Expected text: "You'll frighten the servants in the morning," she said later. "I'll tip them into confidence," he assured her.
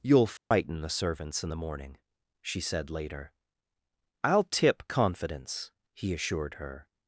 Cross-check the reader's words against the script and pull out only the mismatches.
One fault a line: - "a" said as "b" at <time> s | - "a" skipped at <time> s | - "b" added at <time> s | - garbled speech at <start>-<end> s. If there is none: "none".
- "them into" skipped at 4.9 s